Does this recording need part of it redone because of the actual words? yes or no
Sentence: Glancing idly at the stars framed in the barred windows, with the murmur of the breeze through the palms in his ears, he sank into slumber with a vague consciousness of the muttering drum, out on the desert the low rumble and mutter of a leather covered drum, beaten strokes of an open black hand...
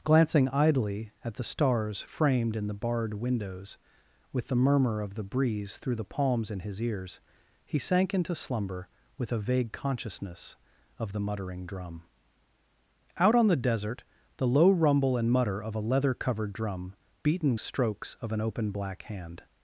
no